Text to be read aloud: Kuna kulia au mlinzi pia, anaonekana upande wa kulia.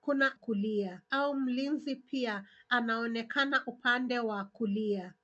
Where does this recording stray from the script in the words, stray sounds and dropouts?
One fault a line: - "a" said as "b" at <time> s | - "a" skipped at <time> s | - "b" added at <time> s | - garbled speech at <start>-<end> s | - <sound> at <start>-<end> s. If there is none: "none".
none